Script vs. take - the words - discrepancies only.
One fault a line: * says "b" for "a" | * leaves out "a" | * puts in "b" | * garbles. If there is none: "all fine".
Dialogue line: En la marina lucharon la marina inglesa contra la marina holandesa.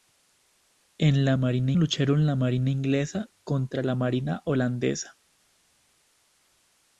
all fine